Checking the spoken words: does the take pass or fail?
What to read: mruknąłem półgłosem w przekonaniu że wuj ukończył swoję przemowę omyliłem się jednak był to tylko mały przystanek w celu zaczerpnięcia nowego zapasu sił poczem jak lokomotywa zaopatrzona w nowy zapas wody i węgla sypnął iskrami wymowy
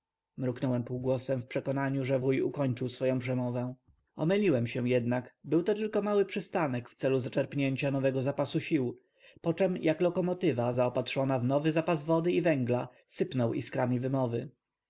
pass